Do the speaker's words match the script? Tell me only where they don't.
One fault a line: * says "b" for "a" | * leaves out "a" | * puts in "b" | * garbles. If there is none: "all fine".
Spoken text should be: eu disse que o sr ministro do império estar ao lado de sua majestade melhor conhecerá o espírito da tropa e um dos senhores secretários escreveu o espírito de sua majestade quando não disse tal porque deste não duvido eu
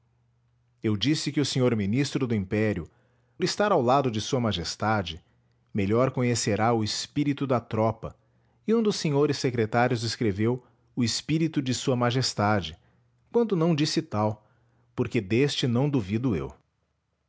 all fine